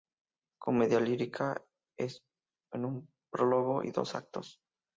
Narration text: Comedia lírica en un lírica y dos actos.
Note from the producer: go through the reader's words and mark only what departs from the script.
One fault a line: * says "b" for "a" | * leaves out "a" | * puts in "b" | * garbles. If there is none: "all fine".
* says "prólogo" for "lírica"